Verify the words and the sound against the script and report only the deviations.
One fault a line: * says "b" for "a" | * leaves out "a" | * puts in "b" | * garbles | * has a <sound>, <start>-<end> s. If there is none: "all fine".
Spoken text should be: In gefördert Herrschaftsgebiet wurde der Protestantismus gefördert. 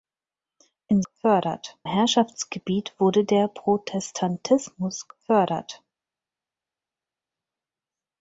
all fine